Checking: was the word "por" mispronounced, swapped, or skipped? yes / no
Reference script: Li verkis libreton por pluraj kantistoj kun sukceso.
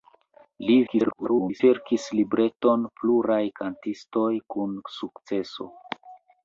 yes